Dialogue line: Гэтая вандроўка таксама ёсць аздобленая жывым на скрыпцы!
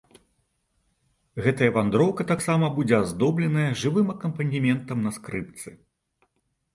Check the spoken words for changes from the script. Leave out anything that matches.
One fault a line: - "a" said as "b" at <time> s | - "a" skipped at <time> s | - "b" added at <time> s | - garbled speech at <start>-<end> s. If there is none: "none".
- "ёсць" said as "будзе" at 2.8 s
- "акампанементам" added at 4.1 s